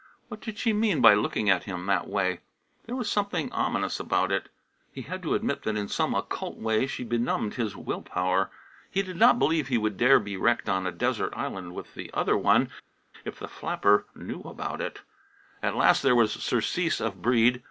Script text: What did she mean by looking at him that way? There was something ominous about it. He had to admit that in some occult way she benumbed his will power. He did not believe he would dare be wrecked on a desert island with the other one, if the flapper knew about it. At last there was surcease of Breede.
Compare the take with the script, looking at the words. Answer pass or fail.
pass